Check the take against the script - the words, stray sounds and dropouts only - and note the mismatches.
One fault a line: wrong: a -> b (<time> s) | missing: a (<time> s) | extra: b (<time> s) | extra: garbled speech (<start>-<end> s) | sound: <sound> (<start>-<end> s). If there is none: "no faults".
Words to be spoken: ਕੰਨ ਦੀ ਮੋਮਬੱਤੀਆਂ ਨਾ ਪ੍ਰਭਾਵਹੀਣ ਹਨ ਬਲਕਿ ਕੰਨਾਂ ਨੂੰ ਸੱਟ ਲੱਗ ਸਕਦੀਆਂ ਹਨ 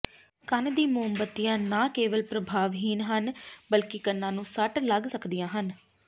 extra: ਕੇਵਲ (2.0 s)